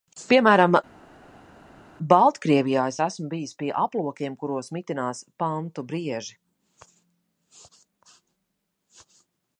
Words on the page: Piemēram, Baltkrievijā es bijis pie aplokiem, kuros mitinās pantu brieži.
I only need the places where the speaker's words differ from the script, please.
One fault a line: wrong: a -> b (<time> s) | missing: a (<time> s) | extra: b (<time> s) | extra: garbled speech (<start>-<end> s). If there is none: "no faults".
extra: esmu (3.0 s)